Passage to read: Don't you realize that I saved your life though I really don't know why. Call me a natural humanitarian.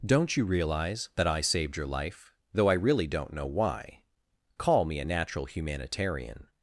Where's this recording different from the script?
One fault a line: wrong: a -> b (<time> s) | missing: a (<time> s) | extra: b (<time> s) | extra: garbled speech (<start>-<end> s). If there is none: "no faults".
no faults